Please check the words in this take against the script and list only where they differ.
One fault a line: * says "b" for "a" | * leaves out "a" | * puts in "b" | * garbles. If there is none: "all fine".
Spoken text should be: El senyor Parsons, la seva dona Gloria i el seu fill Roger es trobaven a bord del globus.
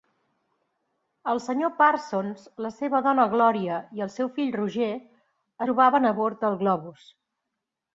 * leaves out "es"